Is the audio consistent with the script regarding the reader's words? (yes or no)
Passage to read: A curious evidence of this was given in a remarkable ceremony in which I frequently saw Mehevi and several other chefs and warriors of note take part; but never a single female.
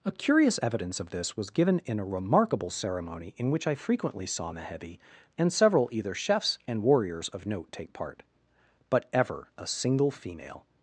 no